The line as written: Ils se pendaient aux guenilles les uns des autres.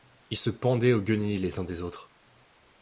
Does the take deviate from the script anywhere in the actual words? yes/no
no